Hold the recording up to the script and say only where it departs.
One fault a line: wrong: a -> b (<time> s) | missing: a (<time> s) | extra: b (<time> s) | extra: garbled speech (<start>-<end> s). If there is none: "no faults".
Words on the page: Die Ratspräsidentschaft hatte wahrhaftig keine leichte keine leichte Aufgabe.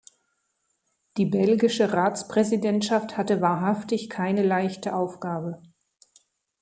extra: belgische (1.3 s)
missing: keine leichte (4.9 s)